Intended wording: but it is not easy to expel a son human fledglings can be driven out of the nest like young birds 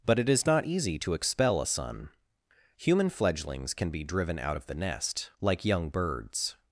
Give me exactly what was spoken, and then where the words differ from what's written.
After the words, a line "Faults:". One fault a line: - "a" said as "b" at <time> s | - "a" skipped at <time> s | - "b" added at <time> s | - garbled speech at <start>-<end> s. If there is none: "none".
but it is not easy to expel a son human fledglings can be driven out of the nest like young birds
Faults:
none